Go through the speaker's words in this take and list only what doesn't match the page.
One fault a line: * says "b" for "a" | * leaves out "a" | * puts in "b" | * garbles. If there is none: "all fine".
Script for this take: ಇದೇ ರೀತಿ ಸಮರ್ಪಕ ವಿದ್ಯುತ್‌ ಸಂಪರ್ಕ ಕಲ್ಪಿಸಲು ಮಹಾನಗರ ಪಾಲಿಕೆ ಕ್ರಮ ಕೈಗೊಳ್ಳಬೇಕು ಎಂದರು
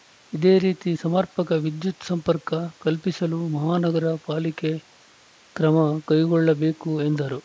all fine